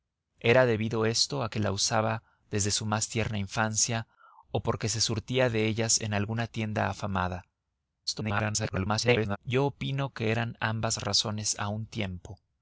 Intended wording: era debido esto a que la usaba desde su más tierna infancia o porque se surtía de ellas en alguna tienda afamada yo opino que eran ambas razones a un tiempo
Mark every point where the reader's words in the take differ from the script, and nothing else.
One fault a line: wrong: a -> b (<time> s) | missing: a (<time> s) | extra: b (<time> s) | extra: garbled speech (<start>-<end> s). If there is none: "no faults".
extra: garbled speech (8.1-9.4 s)